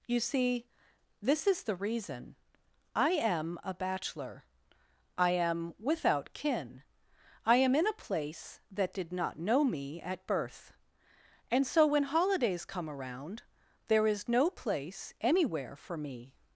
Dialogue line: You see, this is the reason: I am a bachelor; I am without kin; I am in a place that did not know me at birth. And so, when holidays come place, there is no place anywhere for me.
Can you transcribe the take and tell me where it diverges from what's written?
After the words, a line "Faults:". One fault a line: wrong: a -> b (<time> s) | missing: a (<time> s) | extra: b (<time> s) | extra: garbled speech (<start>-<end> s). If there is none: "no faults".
You see, this is the reason: I am a bachelor; I am without kin; I am in a place that did not know me at birth. And so, when holidays come around, there is no place anywhere for me.
Faults:
wrong: place -> around (12.9 s)